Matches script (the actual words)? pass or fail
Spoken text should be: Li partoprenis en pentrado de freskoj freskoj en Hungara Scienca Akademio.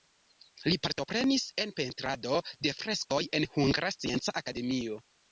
fail